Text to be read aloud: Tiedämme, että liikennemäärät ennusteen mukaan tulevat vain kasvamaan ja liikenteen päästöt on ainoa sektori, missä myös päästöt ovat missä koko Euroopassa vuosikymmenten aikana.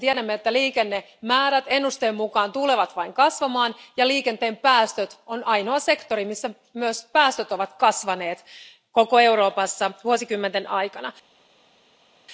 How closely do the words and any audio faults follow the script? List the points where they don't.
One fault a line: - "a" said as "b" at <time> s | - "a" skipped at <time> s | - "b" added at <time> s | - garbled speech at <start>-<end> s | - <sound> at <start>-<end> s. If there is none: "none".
- "missä" said as "kasvaneet" at 7.7 s